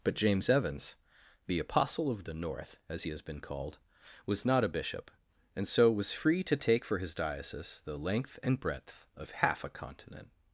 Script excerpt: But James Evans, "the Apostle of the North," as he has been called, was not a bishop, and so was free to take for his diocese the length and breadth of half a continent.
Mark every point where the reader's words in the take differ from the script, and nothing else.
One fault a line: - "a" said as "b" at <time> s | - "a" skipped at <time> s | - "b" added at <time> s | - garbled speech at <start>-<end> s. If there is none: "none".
none